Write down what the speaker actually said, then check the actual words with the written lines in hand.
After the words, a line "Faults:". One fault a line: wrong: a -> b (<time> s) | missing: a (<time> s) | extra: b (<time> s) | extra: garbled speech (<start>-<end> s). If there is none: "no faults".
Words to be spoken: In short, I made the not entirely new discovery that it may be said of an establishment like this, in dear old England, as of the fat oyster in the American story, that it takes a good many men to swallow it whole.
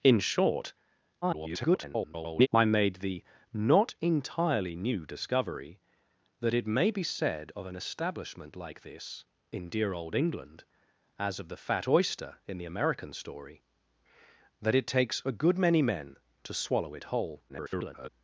In short, [garbled] I made the not entirely new discovery that it may be said of an establishment like this, in dear old England, as of the fat oyster in the American story, that it takes a good many men to swallow it whole. [garbled]
Faults:
extra: garbled speech (1.2-2.5 s)
extra: garbled speech (17.5-18.1 s)